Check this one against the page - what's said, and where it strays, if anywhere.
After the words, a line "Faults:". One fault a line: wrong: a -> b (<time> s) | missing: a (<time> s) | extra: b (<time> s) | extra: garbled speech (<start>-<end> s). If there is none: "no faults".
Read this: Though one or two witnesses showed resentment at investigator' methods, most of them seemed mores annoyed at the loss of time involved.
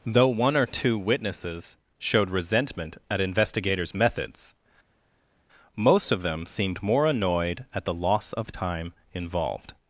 Though one or two witnesses showed resentment at investigators' methods, most of them seemed more annoyed at the loss of time involved.
Faults:
wrong: investigator -> investigators (3.2 s)
wrong: mores -> more (6.8 s)